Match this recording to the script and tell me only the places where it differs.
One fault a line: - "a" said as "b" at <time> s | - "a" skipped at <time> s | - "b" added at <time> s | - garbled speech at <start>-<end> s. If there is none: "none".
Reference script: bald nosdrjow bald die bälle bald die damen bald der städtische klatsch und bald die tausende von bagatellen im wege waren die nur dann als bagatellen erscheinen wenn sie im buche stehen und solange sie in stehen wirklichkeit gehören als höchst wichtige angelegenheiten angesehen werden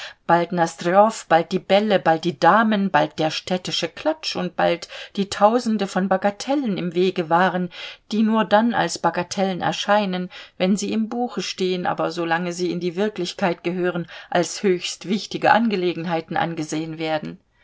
- "und" said as "aber" at 11.9 s
- "stehen" said as "die" at 12.8 s